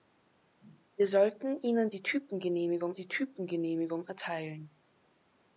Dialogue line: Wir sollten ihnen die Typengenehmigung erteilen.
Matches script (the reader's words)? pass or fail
fail